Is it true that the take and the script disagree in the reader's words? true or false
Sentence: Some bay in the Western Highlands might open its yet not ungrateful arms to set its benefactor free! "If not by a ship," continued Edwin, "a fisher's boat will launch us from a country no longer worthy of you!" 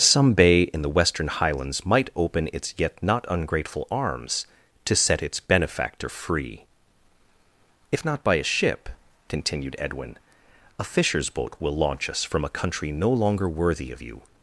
false